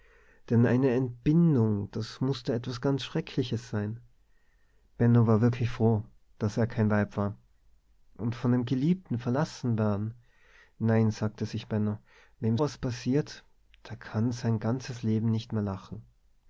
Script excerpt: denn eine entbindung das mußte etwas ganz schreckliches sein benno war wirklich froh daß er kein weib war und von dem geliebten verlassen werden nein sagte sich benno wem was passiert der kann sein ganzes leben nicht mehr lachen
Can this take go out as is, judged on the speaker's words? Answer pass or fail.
pass